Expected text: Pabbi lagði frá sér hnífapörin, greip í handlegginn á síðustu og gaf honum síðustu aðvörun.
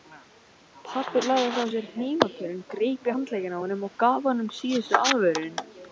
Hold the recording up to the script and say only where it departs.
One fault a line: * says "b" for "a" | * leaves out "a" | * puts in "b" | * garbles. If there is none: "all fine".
* says "honum" for "síðustu"